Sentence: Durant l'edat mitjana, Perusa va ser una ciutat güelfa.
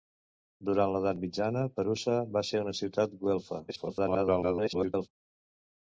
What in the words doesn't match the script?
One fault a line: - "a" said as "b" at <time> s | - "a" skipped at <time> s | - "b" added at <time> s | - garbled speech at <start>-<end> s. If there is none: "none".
- garbled speech at 3.7-5.1 s